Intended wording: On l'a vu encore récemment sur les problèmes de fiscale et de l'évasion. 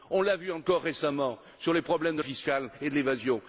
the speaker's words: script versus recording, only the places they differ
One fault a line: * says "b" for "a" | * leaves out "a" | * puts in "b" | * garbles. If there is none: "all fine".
all fine